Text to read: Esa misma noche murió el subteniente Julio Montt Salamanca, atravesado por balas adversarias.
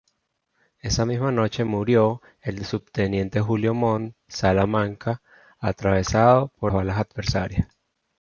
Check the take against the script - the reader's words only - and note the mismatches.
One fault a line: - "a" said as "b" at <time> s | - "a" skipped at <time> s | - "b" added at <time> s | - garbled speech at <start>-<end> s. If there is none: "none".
none